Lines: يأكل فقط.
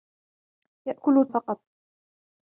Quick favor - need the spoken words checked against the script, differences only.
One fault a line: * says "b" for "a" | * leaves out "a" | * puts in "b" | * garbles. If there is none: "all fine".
all fine